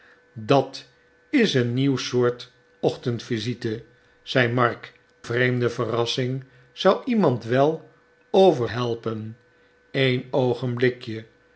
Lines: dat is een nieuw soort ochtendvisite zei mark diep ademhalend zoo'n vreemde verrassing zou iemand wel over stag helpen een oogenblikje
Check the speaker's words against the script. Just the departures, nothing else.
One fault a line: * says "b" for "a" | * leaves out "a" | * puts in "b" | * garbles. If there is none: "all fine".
* leaves out "diep ademhalend zoo'n"
* leaves out "stag"